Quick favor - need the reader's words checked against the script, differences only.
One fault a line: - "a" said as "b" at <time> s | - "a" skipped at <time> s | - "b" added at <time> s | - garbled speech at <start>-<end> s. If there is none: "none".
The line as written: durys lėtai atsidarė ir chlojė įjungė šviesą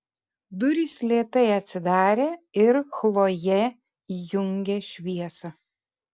none